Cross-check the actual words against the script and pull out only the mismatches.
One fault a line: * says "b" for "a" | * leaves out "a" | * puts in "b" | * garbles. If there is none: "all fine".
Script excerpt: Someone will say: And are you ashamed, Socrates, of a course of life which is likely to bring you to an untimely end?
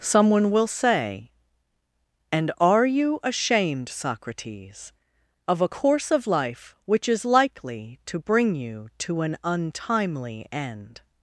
all fine